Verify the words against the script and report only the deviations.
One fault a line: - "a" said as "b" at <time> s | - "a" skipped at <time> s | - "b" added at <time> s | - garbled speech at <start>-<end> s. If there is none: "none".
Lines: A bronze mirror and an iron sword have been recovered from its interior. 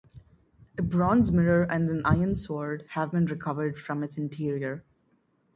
none